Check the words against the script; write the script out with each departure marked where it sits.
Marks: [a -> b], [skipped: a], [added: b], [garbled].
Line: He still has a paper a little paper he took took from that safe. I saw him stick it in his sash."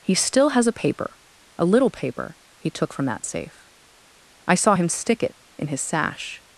He still has a paper a little paper he took [skipped: took] from that safe. I saw him stick it in his sash."